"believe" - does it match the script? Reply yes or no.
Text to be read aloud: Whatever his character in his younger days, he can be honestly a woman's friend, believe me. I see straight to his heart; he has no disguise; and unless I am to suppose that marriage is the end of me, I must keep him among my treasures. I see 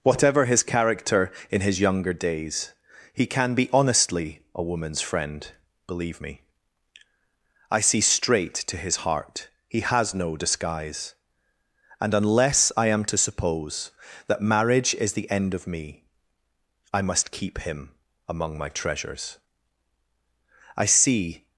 yes